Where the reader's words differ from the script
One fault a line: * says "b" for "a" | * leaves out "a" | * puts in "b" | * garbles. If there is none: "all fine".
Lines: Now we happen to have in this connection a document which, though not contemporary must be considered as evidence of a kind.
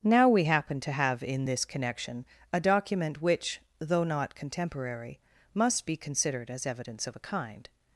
all fine